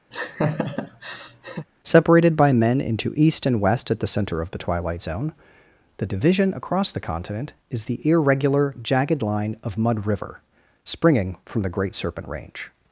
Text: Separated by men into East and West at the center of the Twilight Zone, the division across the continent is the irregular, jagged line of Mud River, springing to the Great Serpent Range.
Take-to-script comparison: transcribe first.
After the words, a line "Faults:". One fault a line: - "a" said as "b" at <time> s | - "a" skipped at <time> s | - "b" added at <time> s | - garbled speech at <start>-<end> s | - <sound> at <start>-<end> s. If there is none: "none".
Separated by men into East and West at the center of the Twilight Zone, the division across the continent is the irregular, jagged line of Mud River, springing from the Great Serpent Range.
Faults:
- laugh at 0.1-1.7 s
- "to" said as "from" at 11.4 s